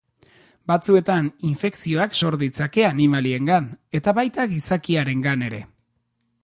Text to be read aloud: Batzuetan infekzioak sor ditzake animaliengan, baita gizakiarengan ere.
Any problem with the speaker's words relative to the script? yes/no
yes